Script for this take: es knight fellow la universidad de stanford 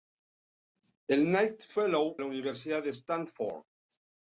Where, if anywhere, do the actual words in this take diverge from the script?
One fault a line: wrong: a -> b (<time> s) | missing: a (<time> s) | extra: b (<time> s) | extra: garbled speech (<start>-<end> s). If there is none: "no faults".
no faults